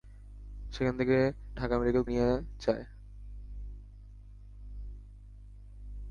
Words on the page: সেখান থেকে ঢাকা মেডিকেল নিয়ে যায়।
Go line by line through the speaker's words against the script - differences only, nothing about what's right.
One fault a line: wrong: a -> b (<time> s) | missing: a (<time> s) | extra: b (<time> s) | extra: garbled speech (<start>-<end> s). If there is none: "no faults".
no faults